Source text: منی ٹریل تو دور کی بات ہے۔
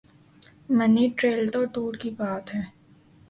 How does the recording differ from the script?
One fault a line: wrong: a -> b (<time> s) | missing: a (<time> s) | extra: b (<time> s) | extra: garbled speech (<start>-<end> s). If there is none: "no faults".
no faults